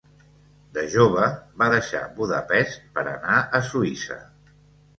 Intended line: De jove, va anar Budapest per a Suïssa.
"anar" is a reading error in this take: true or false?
true